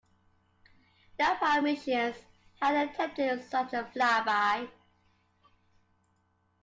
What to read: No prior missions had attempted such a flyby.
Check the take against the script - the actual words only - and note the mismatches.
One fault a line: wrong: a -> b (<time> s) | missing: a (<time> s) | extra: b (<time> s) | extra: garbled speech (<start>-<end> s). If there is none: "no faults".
no faults